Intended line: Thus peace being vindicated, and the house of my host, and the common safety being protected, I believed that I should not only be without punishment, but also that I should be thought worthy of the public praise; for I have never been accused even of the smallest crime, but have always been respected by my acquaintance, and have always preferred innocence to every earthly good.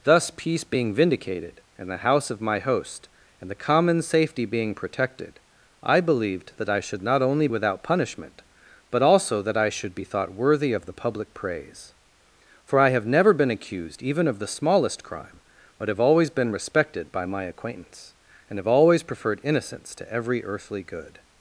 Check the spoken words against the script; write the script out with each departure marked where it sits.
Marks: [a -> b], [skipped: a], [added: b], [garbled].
Thus peace being vindicated, and the house of my host, and the common safety being protected, I believed that I should not only [skipped: be] without punishment, but also that I should be thought worthy of the public praise; for I have never been accused even of the smallest crime, but have always been respected by my acquaintance, and have always preferred innocence to every earthly good.